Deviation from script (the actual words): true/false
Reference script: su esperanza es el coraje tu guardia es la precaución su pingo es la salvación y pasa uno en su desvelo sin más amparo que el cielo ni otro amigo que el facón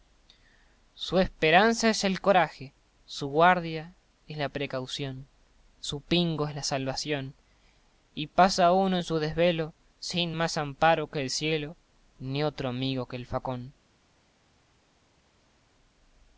true